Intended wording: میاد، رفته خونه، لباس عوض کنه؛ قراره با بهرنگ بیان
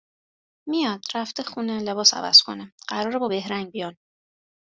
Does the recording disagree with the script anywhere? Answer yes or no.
no